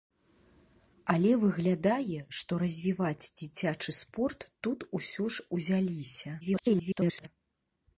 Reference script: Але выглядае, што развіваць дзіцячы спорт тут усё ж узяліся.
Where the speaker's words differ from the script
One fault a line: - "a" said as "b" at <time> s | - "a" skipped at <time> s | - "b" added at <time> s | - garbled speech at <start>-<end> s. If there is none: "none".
- garbled speech at 6.4-7.3 s